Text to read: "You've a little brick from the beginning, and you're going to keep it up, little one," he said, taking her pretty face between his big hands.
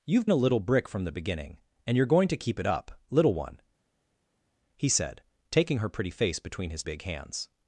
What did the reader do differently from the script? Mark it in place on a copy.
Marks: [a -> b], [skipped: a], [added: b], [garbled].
"You've a little brick from the beginning, and you're going to keep it up, little one," he said, taking her pretty face between his big hands.